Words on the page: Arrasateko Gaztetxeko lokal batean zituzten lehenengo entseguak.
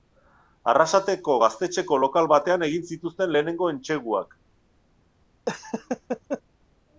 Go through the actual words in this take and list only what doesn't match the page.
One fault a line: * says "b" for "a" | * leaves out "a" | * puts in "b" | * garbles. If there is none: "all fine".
* puts in "egin"